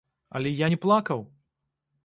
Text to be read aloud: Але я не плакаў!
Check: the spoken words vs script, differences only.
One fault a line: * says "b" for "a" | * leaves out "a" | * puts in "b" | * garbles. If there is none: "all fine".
all fine